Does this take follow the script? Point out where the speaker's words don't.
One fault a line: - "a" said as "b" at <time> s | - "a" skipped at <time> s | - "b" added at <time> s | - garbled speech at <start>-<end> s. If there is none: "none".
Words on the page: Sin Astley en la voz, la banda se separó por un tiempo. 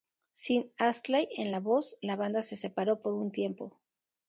none